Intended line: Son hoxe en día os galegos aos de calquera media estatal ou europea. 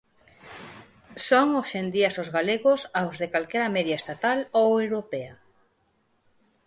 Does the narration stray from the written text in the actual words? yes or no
no